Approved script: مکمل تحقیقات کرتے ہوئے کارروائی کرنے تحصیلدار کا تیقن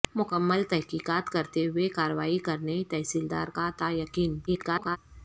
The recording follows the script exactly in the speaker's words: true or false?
false